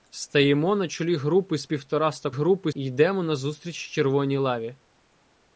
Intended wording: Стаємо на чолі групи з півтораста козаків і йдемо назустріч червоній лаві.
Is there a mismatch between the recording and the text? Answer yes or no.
yes